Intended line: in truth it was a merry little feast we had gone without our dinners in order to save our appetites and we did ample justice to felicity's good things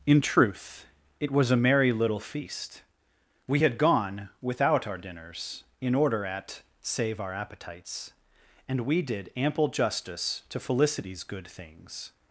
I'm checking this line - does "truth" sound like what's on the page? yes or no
yes